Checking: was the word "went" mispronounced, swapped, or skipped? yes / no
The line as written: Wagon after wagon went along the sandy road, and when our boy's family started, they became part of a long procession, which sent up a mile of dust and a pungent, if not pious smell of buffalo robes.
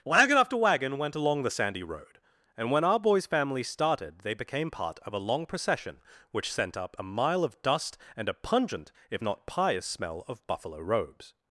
no